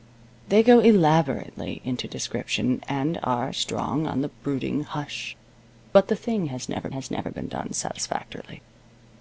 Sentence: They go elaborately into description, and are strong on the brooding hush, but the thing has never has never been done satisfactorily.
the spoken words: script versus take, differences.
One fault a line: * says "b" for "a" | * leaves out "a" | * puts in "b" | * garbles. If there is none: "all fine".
all fine